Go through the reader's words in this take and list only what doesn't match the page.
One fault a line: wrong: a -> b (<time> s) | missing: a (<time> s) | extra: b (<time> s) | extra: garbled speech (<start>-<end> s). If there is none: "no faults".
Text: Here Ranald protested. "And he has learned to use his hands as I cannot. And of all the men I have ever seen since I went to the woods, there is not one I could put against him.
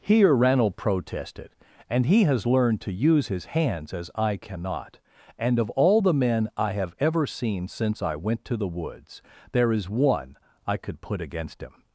missing: not (9.9 s)